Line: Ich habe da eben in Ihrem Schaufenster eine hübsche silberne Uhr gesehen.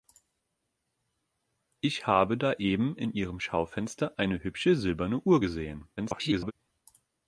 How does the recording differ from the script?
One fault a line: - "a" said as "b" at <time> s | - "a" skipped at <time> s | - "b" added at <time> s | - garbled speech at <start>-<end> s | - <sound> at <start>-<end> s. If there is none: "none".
- garbled speech at 6.0-6.5 s